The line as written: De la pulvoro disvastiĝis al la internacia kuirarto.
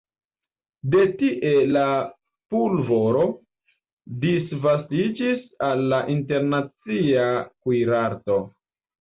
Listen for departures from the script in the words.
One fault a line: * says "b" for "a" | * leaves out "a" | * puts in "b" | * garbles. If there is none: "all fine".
* puts in "tie"